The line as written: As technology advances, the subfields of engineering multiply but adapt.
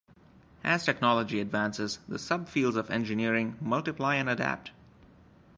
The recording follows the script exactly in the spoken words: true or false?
false